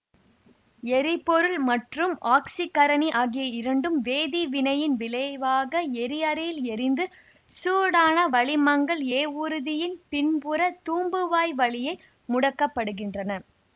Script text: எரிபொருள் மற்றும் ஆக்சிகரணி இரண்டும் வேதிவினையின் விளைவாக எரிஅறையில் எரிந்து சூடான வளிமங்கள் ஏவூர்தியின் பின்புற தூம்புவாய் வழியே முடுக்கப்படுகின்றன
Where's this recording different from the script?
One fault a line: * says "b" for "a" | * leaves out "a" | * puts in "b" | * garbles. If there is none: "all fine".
* puts in "ஆகிய"